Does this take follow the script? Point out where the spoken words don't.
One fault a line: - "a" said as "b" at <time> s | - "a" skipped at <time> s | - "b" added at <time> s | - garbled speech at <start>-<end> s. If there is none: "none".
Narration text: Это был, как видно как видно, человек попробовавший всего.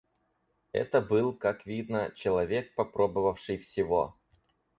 - "как видно" skipped at 2.1 s